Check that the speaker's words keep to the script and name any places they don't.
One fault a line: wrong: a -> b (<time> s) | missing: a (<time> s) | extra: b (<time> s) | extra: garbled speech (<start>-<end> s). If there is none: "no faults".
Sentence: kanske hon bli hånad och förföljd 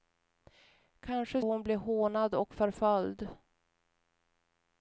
no faults